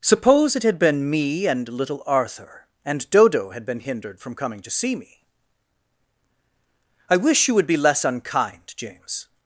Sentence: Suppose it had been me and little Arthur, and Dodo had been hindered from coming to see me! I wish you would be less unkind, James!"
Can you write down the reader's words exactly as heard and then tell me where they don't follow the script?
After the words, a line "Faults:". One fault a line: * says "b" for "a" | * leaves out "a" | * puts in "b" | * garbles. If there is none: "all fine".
Suppose it had been me and little Arthur, and Dodo had been hindered from coming to see me! I wish you would be less unkind, James!"
Faults:
all fine